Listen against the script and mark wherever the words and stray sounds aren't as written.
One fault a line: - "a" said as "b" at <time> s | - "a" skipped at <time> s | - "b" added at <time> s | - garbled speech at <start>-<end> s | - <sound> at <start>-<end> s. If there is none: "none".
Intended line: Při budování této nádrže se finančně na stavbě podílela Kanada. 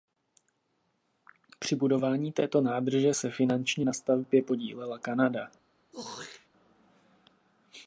- throat clearing at 5.9-6.5 s